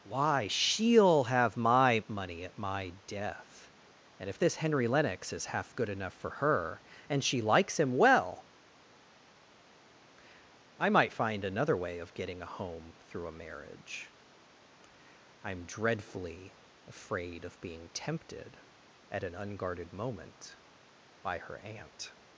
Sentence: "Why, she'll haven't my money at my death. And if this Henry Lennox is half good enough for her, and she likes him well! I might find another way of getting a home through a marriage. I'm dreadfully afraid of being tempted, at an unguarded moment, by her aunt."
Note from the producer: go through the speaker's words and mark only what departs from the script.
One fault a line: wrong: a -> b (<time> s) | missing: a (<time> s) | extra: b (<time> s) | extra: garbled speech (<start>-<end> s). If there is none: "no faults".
wrong: haven't -> have (1.2 s)